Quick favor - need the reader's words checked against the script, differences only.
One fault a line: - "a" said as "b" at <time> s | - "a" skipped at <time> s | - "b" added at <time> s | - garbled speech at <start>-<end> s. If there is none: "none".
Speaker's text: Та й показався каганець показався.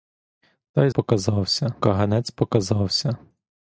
none